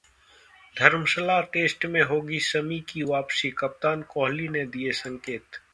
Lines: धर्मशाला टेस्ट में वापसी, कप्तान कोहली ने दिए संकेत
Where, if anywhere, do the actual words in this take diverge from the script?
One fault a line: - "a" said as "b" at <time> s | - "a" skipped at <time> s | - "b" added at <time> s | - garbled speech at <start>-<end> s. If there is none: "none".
- "होगी शमी की" added at 2.0 s